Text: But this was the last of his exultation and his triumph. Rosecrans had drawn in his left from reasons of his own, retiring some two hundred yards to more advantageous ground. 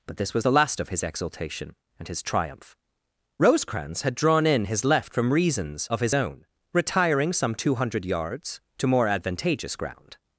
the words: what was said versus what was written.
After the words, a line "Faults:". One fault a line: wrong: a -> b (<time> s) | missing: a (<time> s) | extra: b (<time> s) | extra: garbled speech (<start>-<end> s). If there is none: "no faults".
But this was the last of his exultation and his triumph. Rosecrans had drawn in his left from reasons of his own, retiring some two hundred yards to more advantageous ground.
Faults:
no faults